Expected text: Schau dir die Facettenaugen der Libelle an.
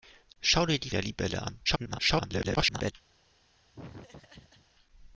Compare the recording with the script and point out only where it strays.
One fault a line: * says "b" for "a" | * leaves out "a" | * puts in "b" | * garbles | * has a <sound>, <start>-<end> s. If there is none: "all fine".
* leaves out "Facettenaugen"
* garbles
* has a laugh, 3.7-4.7 s